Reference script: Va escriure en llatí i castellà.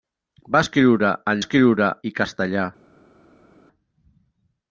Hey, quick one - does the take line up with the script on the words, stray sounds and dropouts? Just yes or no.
no